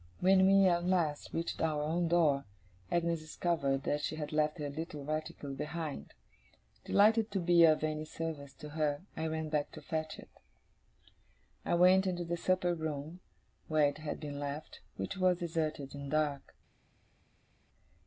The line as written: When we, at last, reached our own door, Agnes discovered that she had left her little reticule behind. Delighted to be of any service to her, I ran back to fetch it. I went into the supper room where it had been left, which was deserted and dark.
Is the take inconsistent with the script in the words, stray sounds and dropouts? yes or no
no